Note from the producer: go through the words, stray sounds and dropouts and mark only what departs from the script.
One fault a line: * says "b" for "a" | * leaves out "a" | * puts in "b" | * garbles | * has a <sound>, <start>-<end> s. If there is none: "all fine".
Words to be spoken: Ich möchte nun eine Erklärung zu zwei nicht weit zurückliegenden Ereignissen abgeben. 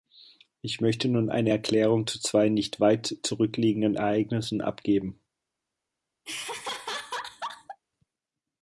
* has a laugh, 6.3-7.8 s